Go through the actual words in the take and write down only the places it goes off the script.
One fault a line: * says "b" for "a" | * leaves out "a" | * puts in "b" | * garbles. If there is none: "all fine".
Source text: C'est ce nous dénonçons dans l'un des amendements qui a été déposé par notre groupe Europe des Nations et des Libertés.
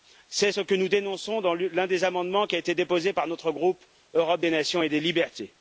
* puts in "que"